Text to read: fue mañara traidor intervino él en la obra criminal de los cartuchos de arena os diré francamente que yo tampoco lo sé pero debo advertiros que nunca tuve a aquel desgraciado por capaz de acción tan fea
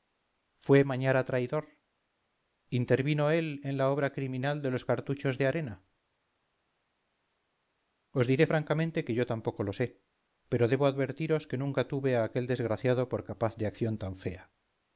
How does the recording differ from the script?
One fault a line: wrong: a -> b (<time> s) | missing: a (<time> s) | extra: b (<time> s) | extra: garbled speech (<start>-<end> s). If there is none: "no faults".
no faults